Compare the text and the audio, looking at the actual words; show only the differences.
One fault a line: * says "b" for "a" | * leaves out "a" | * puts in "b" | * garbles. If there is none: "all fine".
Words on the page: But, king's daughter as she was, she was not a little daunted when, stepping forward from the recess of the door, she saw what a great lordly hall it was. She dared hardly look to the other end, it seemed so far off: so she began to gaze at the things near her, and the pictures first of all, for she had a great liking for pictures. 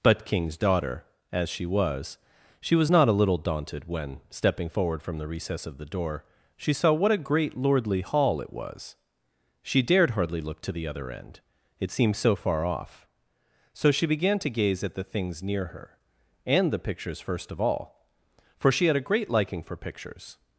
all fine